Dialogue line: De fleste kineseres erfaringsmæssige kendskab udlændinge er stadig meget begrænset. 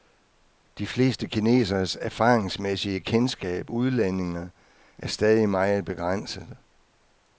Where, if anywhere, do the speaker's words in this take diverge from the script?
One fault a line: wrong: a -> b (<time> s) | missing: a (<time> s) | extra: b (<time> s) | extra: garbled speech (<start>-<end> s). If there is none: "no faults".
no faults